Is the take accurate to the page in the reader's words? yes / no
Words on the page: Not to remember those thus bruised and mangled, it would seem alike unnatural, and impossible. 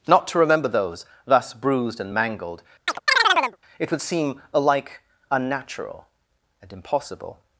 yes